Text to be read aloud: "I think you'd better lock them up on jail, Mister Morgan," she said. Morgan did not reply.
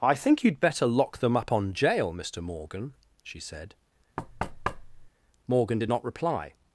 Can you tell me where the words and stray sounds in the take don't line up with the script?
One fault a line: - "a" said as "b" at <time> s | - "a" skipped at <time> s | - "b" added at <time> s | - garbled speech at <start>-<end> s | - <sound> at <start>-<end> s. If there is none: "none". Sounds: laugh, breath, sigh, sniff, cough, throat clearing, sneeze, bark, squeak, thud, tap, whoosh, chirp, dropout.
- thud at 4.2-5.1 s